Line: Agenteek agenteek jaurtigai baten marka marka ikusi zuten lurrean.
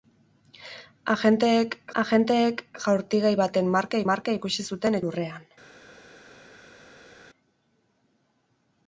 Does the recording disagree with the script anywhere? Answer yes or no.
no